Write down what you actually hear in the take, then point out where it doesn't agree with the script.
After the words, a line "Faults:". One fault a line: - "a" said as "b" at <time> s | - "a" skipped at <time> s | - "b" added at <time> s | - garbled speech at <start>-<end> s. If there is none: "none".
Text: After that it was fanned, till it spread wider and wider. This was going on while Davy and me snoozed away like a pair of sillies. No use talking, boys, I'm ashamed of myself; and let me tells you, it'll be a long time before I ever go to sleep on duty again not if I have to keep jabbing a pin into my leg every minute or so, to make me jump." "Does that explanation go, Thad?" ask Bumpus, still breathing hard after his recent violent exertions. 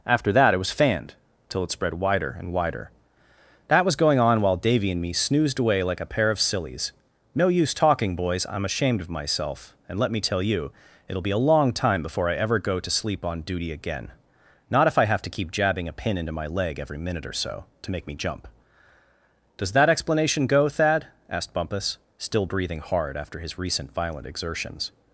After that it was fanned, till it spread wider and wider. That was going on while Davy and me snoozed away like a pair of sillies. No use talking, boys, I'm ashamed of myself; and let me tell you, it'll be a long time before I ever go to sleep on duty again not if I have to keep jabbing a pin into my leg every minute or so, to make me jump." "Does that explanation go, Thad?" asked Bumpus, still breathing hard after his recent violent exertions.
Faults:
- "This" said as "That" at 3.7 s
- "tells" said as "tell" at 10.2 s
- "ask" said as "asked" at 21.3 s